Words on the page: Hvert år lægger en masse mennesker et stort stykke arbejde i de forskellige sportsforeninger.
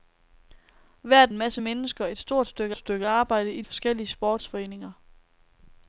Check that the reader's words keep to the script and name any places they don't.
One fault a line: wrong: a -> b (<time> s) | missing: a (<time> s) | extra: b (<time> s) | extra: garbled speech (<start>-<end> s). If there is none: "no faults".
missing: år lægger (1.3 s)
extra: stykke (2.8 s)
missing: de (3.6 s)